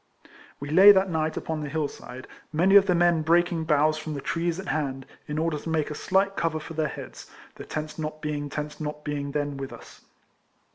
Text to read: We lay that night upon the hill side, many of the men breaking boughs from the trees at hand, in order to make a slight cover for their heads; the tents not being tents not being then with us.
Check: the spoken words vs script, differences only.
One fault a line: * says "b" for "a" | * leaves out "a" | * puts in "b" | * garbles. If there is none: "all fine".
all fine